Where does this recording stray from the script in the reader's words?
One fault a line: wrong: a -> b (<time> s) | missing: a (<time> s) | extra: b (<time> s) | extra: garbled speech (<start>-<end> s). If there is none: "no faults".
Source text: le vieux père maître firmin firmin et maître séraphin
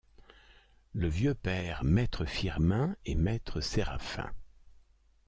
missing: firmin (3.0 s)